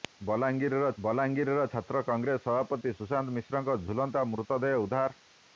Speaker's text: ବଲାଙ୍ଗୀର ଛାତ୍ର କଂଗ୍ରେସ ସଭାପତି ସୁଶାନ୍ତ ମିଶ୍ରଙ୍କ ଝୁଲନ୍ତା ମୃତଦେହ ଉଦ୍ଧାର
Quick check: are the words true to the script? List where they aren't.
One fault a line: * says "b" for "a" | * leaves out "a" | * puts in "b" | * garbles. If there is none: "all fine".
* puts in "ବଲାଙ୍ଗୀର"